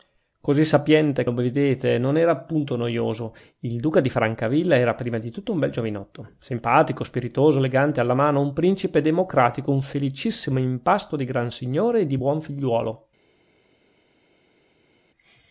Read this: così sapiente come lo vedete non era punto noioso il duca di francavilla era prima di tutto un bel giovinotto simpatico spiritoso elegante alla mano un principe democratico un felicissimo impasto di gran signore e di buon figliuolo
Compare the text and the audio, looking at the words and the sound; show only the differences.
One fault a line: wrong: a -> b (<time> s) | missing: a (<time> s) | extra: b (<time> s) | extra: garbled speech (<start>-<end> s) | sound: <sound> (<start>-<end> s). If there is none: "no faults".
missing: come (1.2 s)